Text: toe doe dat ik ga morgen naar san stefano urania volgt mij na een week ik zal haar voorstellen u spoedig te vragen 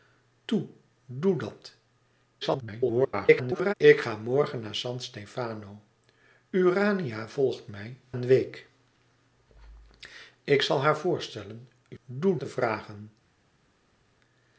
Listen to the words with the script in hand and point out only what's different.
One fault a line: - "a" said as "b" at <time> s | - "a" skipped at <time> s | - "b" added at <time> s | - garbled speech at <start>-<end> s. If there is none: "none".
- garbled speech at 2.4-3.7 s
- "na" skipped at 8.0 s
- "spoedig" said as "doe" at 12.0 s